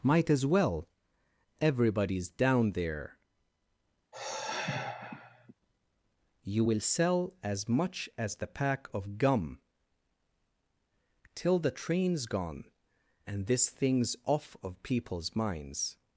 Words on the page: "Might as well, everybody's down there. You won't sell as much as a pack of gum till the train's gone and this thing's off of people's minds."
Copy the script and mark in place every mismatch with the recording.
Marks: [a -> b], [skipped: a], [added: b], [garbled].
"Might as well, everybody's down there. You [won't -> will] sell as much as [a -> the] pack of gum till the train's gone and this thing's off of people's minds."